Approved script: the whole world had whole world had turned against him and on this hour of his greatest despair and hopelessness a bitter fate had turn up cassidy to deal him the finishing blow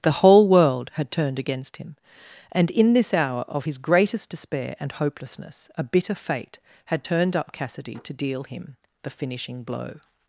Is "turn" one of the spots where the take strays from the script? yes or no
yes